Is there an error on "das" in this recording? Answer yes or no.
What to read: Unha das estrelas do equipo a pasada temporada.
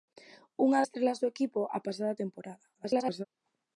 yes